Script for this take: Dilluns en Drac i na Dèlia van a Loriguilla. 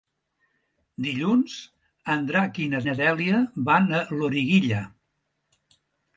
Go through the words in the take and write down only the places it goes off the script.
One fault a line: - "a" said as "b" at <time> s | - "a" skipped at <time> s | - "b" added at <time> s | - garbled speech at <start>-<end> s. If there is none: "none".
- "na" added at 2.9 s